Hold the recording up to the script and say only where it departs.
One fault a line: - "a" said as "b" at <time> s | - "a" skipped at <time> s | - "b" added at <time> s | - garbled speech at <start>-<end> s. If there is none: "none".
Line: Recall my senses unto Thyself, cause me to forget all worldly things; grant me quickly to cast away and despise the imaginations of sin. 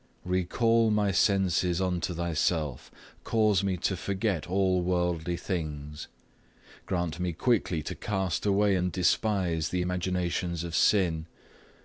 none